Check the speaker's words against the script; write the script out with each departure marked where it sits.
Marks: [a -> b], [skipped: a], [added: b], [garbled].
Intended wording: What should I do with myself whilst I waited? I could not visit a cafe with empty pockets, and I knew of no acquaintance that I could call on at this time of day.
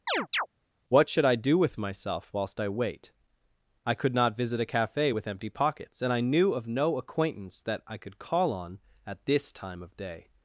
What should I do with myself whilst I [waited? -> wait] I could not visit a cafe with empty pockets, and I knew of no acquaintance that I could call on at this time of day.